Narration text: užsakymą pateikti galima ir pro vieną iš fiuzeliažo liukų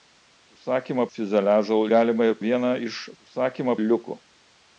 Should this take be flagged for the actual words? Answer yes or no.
yes